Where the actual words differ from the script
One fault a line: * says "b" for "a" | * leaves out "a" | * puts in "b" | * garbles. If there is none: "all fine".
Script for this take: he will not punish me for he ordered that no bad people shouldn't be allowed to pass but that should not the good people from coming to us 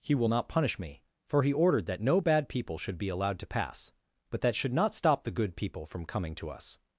* says "should" for "shouldn't"
* puts in "stop"